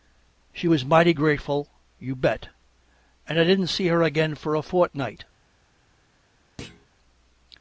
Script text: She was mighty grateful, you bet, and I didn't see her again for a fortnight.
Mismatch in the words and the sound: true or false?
true